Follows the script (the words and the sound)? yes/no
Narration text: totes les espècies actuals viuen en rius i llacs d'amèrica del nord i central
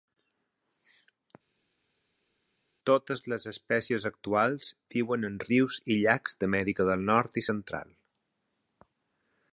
yes